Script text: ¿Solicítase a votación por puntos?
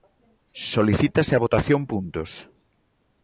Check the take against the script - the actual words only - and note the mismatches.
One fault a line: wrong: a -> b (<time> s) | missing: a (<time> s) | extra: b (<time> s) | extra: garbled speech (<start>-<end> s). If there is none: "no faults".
missing: por (1.8 s)